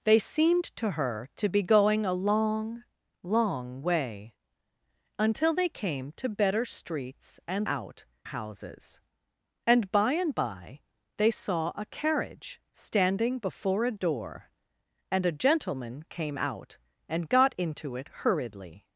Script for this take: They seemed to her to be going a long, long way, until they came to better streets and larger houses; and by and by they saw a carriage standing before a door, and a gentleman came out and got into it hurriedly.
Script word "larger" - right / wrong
wrong